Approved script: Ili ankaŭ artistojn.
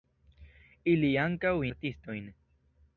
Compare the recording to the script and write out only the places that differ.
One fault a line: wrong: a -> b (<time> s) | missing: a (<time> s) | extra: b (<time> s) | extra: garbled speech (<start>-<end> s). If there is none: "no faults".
no faults